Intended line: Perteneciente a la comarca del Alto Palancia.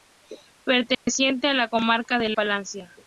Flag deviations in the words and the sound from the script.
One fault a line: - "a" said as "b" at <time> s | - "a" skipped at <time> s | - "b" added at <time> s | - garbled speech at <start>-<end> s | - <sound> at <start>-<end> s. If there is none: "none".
- dropout at 0.9-1.1 s
- "Alto" skipped at 2.4 s